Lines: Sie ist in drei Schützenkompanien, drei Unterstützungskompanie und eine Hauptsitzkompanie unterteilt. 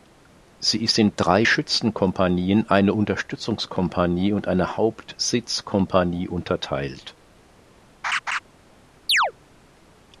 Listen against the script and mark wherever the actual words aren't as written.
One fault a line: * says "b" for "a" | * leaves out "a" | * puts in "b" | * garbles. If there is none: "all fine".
* says "eine" for "drei"